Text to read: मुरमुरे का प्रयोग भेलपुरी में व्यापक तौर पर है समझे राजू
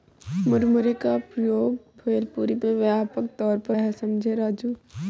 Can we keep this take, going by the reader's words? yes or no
yes